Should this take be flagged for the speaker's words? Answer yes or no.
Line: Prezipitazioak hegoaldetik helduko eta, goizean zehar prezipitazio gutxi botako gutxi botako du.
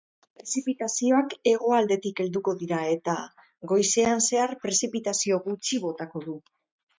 yes